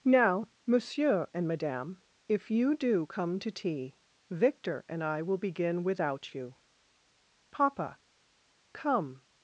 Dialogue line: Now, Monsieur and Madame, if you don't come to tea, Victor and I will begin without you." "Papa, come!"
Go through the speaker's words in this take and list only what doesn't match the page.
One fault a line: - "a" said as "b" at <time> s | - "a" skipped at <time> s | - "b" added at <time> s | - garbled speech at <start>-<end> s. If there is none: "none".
- "don't" said as "do" at 2.8 s